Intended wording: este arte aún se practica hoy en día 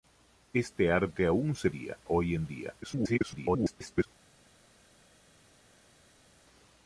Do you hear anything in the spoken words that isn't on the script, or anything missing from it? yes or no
yes